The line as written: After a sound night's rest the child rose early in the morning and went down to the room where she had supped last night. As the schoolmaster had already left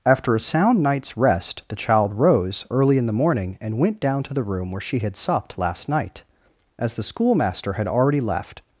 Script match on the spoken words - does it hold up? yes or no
yes